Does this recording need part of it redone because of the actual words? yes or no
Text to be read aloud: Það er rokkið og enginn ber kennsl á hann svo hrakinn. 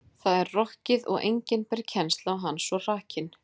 no